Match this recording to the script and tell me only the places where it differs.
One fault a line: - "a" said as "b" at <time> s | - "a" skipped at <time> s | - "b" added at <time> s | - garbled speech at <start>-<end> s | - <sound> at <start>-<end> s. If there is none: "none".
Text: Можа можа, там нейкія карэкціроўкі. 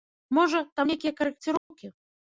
- "можа" skipped at 0.6 s
- dropout at 1.6-1.7 s